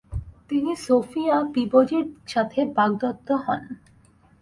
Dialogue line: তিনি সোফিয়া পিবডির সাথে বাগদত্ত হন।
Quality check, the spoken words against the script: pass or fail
pass